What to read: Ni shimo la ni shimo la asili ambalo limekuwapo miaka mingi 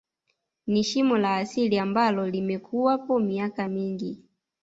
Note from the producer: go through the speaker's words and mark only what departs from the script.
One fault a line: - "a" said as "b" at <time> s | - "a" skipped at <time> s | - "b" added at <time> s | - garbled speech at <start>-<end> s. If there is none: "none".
- "ni shimo la" skipped at 1.4 s